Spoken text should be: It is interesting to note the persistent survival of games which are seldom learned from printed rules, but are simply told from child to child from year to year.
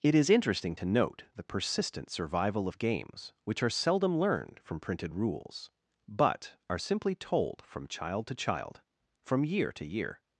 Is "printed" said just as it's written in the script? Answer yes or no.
yes